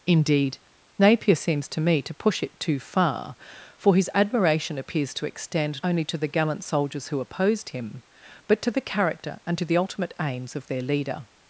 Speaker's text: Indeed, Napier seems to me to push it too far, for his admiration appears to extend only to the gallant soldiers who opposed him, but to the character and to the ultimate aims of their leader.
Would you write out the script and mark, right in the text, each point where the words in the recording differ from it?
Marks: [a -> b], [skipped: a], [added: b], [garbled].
Indeed, Napier seems to me to push it too far, for his admiration appears to extend only to the gallant soldiers who opposed him, but to the character and to the ultimate aims of their leader.